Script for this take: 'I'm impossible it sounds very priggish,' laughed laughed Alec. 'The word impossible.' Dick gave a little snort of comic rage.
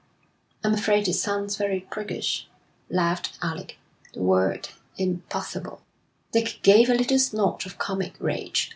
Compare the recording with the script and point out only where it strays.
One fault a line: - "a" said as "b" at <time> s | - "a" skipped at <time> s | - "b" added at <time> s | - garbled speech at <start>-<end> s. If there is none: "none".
- "impossible" said as "afraid" at 0.7 s
- "laughed" skipped at 3.4 s